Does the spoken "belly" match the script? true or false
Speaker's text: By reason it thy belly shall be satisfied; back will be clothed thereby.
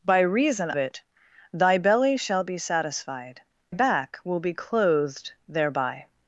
true